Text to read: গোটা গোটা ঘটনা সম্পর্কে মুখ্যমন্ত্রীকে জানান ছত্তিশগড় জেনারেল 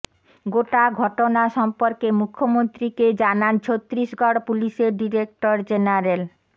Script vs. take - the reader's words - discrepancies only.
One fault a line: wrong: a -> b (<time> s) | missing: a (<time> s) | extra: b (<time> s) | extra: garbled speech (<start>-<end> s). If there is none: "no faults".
missing: গোটা (0.8 s)
extra: পুলিশের ডিরেক্টর (4.5 s)